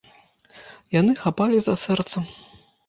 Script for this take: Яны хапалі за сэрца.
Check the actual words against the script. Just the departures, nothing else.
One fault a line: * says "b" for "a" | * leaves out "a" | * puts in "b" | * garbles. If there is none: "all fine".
all fine